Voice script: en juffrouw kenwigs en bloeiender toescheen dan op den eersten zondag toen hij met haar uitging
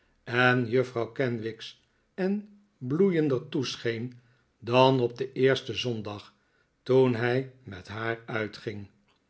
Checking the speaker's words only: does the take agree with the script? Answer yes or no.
yes